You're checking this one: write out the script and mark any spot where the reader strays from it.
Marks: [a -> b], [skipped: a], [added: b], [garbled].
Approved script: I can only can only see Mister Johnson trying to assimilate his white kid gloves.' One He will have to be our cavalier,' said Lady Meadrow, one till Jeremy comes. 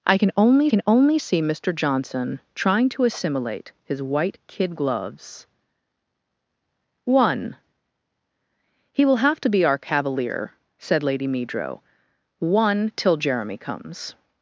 I can only can only see Mister Johnson trying to assimilate his white kid gloves.' One He will have to be our cavalier,' said Lady Meadrow, one till Jeremy comes.